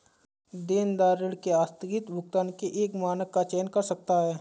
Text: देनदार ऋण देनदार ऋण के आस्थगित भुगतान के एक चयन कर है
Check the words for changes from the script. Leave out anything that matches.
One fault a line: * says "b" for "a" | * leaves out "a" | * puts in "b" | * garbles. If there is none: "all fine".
* leaves out "देनदार ऋण"
* puts in "मानक का"
* puts in "सकता"